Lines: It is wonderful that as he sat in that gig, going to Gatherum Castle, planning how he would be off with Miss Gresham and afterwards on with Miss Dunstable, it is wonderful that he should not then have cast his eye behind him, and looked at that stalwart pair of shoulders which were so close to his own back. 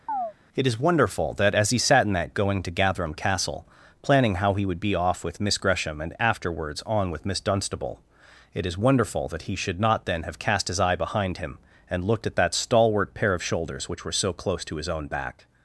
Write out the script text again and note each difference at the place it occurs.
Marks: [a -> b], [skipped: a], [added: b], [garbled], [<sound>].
[chirp] It is wonderful that as he sat in that [skipped: gig,] going to Gatherum Castle, planning how he would be off with Miss Gresham and afterwards on with Miss Dunstable, it is wonderful that he should not then have cast his eye behind him, and looked at that stalwart pair of shoulders which were so close to his own back.